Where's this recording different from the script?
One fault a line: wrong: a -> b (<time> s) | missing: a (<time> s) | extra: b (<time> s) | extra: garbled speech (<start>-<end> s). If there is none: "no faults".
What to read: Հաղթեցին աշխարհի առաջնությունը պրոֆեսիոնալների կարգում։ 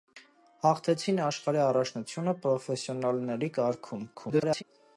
extra: garbled speech (4.1-4.6 s)